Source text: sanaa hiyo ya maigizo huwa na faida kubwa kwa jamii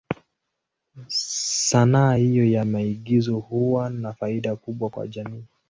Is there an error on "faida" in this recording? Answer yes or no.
no